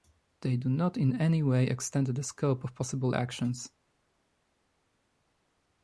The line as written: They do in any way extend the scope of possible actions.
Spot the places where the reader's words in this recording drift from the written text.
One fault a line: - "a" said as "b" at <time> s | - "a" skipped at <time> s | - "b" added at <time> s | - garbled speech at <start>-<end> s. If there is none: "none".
- "not" added at 0.7 s